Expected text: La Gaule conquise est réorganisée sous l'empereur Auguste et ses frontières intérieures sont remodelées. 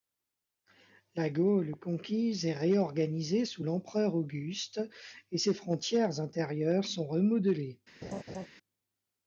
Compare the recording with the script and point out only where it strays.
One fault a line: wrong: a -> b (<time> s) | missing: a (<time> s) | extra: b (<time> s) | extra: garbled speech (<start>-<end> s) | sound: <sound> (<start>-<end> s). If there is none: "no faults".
sound: laugh (8.0-8.5 s)